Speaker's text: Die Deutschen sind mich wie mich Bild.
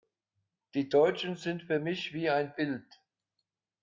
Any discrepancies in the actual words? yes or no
yes